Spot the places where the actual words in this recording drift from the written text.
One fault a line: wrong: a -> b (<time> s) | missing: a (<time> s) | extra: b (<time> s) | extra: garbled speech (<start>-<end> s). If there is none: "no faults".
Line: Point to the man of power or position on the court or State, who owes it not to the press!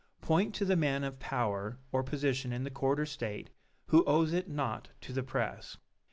wrong: on -> in (2.5 s)